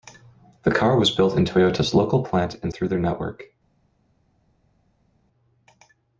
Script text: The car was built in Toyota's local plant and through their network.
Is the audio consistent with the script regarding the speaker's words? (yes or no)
yes